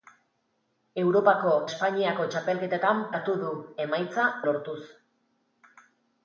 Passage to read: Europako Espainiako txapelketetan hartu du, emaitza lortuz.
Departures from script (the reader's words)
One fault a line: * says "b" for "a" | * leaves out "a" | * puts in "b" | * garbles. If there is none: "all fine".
all fine